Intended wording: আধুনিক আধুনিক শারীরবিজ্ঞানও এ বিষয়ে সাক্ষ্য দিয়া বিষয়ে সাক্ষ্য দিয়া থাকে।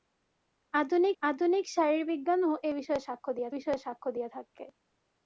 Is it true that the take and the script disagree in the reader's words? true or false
false